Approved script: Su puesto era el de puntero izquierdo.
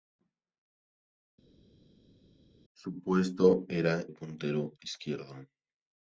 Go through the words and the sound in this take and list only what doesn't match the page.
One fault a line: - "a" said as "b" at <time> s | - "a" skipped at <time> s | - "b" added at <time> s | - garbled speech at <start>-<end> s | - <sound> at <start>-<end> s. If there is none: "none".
- "el de" skipped at 4.0 s